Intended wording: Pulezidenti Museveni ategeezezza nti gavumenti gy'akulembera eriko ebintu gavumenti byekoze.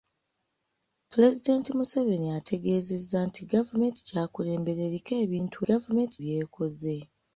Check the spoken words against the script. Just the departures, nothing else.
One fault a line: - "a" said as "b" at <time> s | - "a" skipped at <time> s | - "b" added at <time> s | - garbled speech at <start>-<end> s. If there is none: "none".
none